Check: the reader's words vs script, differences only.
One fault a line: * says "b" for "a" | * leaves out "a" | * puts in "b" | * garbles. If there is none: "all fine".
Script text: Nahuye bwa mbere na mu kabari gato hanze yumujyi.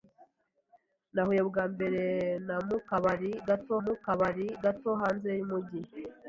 * puts in "mu kabari gato"